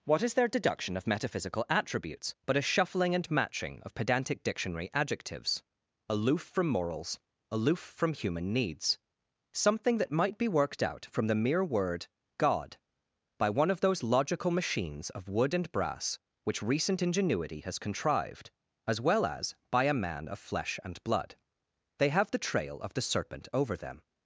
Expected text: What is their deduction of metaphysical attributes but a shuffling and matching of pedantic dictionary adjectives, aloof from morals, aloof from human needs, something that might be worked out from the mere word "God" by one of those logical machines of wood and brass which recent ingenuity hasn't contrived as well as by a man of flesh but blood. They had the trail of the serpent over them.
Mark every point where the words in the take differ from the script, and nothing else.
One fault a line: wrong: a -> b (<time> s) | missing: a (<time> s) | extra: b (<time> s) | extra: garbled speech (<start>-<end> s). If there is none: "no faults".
wrong: hasn't -> has (17.6 s)
wrong: but -> and (20.8 s)
wrong: had -> have (22.1 s)